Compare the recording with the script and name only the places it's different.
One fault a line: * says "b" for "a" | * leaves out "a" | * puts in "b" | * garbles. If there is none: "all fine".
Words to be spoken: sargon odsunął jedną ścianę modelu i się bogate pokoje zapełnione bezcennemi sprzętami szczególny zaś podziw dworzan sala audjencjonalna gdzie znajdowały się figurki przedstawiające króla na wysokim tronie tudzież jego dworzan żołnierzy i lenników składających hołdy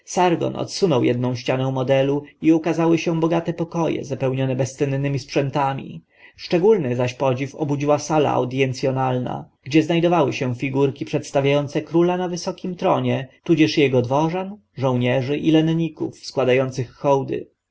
* puts in "ukazały"
* says "obudziła" for "dworzan"